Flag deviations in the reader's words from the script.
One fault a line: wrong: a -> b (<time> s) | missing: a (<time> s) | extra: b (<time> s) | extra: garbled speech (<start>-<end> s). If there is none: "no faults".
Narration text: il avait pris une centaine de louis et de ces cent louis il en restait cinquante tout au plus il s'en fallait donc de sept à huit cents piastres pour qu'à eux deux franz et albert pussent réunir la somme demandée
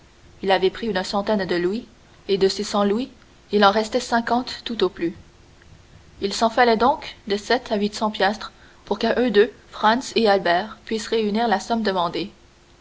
no faults